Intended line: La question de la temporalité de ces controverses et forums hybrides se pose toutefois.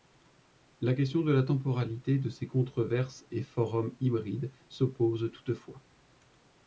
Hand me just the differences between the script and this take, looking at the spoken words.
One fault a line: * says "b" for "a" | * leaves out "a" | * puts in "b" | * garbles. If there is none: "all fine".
all fine